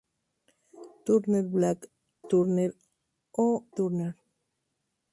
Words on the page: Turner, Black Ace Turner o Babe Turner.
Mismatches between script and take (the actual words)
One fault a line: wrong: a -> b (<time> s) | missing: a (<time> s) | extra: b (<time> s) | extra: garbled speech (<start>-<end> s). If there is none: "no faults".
missing: Ace (1.9 s)
missing: Babe (3.7 s)